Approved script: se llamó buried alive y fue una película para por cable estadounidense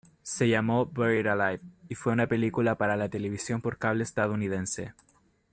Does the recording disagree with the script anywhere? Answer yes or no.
yes